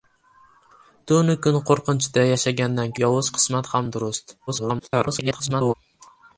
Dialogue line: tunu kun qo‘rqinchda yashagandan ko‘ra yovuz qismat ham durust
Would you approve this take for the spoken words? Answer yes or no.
no